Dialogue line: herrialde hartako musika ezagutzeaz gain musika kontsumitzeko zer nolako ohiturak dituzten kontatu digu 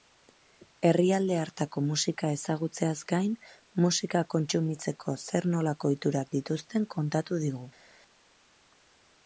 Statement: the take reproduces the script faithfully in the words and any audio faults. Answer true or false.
true